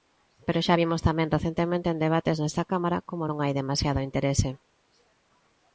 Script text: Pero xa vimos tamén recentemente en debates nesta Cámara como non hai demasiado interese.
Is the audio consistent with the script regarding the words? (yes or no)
yes